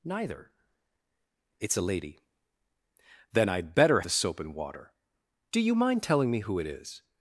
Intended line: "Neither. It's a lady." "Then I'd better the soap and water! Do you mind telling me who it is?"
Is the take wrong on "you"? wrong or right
right